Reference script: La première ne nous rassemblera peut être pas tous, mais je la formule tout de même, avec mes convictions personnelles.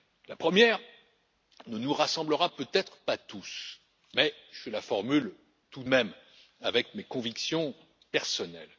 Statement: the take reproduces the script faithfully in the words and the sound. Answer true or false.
true